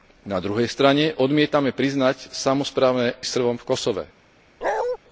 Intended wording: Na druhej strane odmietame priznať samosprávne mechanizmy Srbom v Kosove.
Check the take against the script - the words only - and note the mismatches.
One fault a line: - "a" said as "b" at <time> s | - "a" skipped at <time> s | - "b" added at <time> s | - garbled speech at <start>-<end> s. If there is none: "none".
- "mechanizmy" skipped at 3.2 s